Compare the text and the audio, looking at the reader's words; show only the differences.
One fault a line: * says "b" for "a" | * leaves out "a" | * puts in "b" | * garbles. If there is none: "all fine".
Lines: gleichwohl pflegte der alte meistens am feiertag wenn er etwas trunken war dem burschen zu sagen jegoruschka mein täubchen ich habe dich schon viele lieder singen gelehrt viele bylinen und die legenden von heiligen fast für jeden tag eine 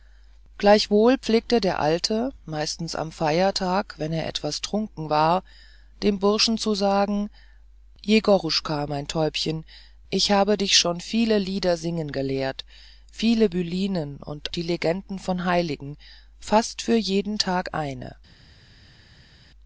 all fine